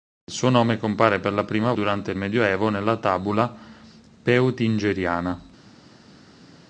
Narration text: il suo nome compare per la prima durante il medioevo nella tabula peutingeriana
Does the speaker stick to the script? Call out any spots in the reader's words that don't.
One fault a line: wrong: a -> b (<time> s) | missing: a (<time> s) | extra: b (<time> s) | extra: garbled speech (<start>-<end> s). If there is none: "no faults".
no faults